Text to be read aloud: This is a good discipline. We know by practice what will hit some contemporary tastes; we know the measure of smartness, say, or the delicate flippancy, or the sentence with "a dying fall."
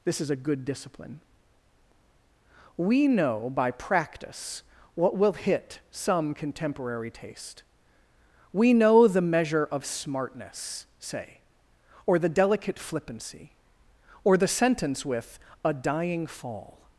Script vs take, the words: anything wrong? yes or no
yes